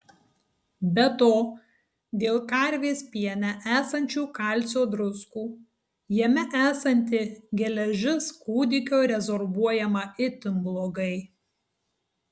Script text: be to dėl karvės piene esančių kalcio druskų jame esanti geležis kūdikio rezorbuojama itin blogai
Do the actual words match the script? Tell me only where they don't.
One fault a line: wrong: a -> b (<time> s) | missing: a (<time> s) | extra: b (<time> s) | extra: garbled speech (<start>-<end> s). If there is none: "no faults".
no faults